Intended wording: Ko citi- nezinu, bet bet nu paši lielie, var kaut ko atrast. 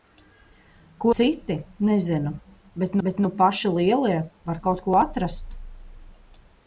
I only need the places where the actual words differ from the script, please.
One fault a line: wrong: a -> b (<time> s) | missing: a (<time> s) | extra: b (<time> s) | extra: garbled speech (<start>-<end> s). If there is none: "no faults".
no faults